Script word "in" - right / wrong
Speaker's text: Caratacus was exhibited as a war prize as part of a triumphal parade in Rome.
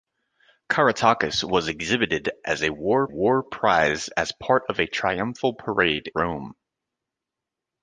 wrong